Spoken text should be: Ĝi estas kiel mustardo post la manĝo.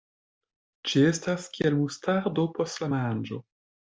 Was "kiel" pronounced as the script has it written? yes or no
yes